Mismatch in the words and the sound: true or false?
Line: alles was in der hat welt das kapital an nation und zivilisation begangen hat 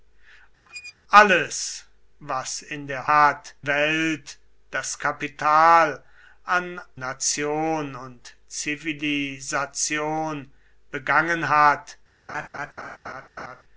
true